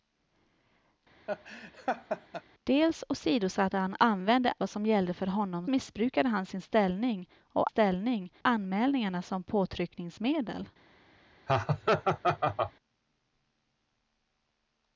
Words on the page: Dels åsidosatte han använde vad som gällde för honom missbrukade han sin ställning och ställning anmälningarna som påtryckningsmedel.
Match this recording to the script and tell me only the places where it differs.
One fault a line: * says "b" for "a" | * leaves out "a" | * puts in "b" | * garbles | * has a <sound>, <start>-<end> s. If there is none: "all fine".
* has a laugh, 1.3-2.4 s
* has a laugh, 11.5-12.7 s